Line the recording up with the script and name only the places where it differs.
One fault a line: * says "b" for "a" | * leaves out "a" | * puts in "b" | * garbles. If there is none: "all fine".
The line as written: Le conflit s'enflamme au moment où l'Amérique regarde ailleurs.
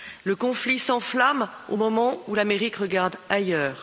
all fine